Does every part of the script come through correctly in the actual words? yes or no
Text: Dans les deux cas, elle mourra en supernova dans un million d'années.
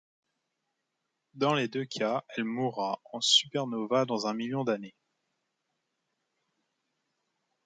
yes